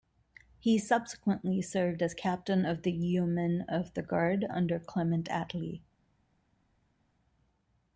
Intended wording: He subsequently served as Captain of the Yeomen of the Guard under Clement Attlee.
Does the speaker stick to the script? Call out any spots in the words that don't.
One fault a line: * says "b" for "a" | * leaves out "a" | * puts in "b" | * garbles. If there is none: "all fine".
all fine